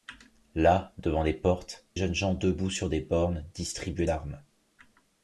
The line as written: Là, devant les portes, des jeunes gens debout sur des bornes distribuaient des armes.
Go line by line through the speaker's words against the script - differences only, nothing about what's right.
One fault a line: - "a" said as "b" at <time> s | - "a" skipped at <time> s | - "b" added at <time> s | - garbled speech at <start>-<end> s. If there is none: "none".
- "des" skipped at 1.9 s
- "des" skipped at 4.1 s